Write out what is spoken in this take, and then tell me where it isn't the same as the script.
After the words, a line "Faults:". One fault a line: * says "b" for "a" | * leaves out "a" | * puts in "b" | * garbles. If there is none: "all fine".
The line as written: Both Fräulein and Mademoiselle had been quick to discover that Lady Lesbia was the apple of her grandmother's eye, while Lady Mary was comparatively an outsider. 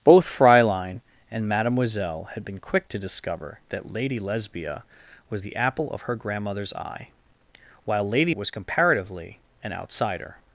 Both Fräulein and Mademoiselle had been quick to discover that Lady Lesbia was the apple of her grandmother's eye, while Lady Was comparatively an outsider.
Faults:
* leaves out "Mary"